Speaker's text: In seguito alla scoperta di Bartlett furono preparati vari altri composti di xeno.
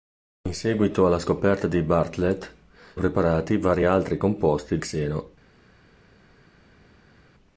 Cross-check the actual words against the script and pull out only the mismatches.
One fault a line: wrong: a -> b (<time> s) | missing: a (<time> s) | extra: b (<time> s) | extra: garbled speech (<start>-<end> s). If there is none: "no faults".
missing: furono (2.5 s)
missing: di (4.8 s)